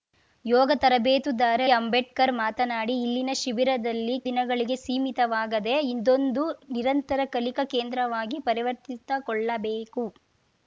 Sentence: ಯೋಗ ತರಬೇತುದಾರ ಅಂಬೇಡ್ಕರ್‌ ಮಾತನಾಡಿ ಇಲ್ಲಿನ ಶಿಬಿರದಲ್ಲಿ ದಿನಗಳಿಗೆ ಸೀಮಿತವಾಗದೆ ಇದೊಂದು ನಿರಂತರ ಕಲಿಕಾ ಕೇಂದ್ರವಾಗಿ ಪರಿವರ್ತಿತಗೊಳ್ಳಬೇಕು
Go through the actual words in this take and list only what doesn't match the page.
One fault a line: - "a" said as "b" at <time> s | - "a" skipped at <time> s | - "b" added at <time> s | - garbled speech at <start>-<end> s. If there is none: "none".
none